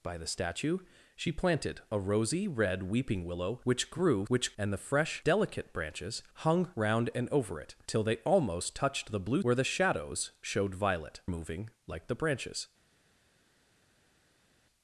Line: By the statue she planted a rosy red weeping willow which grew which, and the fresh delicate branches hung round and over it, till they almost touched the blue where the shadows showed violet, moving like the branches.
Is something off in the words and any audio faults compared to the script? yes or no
no